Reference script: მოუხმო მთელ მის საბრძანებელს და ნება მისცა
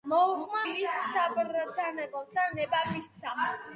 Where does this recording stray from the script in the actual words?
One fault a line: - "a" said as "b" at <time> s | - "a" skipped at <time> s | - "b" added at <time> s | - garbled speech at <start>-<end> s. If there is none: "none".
- "მთელ" skipped at 0.6 s